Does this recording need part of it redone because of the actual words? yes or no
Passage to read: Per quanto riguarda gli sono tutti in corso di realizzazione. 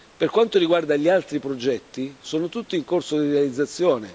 yes